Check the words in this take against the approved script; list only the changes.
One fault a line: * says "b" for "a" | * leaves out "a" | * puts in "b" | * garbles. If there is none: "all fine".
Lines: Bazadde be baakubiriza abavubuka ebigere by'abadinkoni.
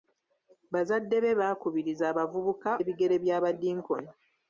all fine